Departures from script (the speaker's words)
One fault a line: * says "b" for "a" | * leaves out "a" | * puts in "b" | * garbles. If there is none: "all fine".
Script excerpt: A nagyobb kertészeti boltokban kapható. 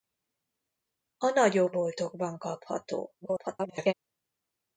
* leaves out "kertészeti"
* garbles